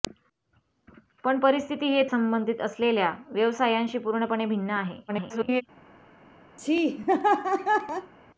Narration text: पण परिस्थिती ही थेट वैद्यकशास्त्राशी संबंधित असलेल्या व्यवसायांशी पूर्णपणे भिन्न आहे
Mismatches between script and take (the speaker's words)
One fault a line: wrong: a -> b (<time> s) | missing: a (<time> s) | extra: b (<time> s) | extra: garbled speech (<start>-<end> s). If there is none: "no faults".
missing: थेट वैद्यकशास्त्राशी (2.0 s)
extra: garbled speech (5.1-5.6 s)